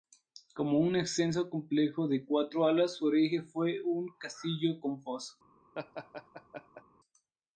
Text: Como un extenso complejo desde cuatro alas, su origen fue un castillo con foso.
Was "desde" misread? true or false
true